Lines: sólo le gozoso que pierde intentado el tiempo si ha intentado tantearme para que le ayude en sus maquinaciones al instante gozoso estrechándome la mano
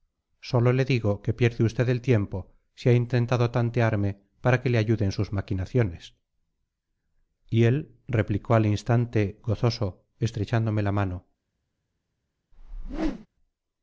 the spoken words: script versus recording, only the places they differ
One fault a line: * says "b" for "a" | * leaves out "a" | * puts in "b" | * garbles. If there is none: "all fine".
* says "digo" for "gozoso"
* says "usted" for "intentado"
* puts in "y él replicó"